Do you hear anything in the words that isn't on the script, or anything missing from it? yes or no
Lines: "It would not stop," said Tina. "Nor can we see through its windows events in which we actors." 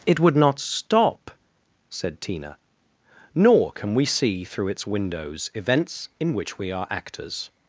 yes